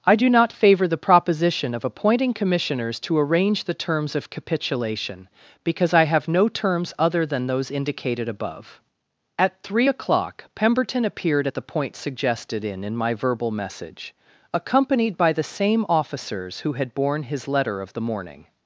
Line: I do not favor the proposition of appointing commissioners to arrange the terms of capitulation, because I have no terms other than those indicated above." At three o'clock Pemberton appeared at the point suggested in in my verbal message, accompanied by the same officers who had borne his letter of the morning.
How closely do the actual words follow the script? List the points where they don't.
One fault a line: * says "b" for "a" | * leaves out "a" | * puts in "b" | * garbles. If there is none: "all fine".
all fine